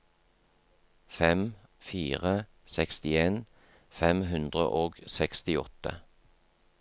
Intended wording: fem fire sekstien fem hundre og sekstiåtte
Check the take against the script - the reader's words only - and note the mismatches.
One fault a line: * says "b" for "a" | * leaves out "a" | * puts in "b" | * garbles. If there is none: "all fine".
all fine